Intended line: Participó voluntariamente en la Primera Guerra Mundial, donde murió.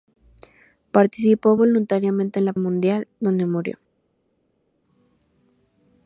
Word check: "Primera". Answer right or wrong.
wrong